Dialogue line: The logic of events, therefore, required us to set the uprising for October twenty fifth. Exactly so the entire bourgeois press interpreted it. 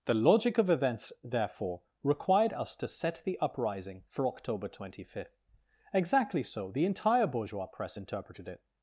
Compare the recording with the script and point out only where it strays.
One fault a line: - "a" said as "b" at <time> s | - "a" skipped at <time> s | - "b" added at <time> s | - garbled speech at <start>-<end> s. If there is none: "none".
none